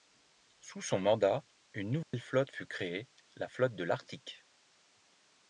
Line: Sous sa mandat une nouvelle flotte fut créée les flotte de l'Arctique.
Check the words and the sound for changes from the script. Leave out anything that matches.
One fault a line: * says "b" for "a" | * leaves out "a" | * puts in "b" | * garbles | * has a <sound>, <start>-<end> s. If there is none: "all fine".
* says "son" for "sa"
* has a dropout, 2.0-2.1 s
* says "la" for "les"